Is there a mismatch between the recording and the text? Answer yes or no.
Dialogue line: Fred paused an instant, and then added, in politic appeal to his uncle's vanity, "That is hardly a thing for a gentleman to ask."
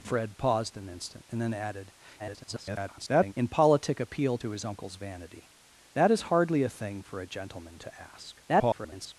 yes